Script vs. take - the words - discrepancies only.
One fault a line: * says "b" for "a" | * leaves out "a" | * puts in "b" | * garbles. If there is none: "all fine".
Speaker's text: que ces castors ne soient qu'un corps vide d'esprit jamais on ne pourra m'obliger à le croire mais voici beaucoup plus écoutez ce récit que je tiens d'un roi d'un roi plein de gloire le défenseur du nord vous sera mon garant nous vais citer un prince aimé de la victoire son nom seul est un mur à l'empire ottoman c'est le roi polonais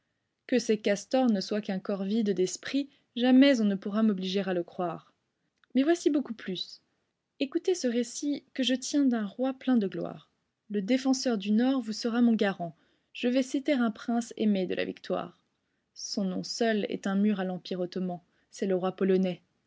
* leaves out "d'un roi"
* says "je" for "nous"